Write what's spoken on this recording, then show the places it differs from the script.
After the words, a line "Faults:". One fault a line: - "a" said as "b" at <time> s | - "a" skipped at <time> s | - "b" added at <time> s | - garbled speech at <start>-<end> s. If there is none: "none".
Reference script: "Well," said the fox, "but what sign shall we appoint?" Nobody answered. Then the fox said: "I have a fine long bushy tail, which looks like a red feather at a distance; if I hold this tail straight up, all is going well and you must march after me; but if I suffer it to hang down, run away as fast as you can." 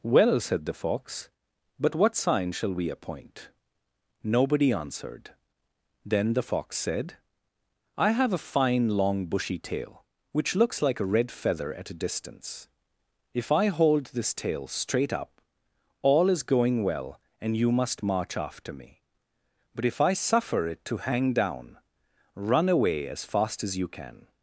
"Well," said the fox, "but what sign shall we appoint?" Nobody answered. Then the fox said: "I have a fine long bushy tail, which looks like a red feather at a distance; if I hold this tail straight up, all is going well and you must march after me; but if I suffer it to hang down, run away as fast as you can."
Faults:
none